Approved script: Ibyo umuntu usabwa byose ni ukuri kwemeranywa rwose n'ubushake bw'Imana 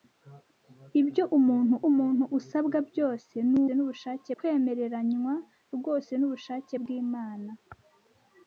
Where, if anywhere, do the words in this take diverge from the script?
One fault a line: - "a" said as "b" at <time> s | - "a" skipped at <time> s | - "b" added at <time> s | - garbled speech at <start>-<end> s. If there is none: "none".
- "umuntu" added at 1.9 s
- "ukuri" said as "n'ubushake" at 3.7 s